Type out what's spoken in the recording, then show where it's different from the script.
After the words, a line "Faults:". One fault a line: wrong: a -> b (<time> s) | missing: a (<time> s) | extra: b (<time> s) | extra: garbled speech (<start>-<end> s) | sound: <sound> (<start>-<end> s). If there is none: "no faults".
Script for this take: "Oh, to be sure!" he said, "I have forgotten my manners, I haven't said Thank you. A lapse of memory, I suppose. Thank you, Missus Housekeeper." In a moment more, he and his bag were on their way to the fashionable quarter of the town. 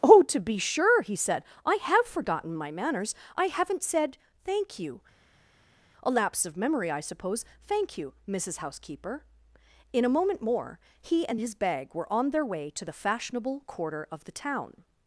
"Oh, to be sure!" he said, "I have forgotten my manners, I haven't said Thank you. A lapse of memory, I suppose. Thank you, Missus Housekeeper." In a moment more, he and his bag were on their way to the fashionable quarter of the town.
Faults:
no faults